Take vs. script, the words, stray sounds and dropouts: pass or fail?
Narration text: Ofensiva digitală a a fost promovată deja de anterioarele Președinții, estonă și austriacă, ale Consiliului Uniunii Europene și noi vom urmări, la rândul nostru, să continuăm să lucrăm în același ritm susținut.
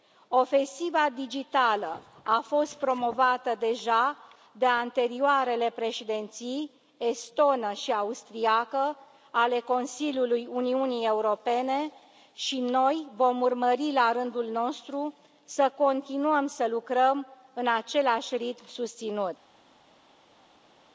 fail